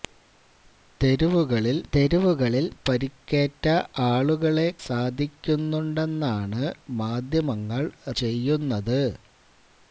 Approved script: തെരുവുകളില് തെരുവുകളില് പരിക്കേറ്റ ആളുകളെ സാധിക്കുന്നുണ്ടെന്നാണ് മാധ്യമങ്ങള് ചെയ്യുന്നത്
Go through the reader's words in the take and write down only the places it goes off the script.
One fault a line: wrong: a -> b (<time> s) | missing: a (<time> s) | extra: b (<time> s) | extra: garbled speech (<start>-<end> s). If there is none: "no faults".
no faults